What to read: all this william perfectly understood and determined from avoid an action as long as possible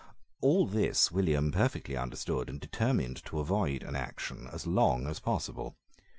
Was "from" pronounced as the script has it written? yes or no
no